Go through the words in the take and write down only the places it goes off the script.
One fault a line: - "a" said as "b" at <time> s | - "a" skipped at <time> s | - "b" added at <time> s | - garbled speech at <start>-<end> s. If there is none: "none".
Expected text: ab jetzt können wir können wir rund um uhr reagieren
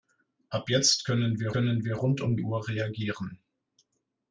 none